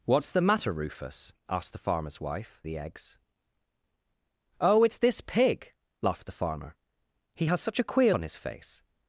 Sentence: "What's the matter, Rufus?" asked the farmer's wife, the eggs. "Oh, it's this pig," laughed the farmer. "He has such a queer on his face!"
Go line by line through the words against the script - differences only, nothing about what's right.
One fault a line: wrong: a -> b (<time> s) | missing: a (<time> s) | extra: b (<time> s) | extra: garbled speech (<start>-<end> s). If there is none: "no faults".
no faults